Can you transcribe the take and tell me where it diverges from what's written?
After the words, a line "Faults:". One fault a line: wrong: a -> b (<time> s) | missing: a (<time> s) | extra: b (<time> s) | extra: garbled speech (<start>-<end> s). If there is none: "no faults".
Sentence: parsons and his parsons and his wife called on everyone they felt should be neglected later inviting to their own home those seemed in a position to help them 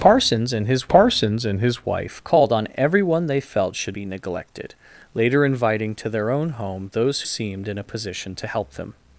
parsons and his parsons and his wife called on everyone they felt should be neglected later inviting to their own home those seemed in a position to help them
Faults:
no faults